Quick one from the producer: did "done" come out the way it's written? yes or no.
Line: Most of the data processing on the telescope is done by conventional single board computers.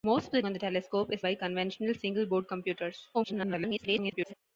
no